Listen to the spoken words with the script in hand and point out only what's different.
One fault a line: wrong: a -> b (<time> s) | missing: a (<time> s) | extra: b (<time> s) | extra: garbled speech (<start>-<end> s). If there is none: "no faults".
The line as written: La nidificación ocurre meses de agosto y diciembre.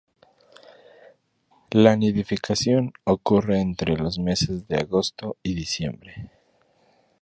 extra: entre los (3.6 s)